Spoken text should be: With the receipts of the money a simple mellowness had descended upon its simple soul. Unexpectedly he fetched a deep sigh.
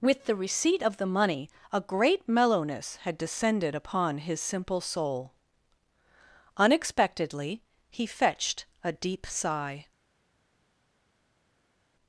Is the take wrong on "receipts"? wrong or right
wrong